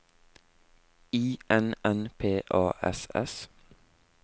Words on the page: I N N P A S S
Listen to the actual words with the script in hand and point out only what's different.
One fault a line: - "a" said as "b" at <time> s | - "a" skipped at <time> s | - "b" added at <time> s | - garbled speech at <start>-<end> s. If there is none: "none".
none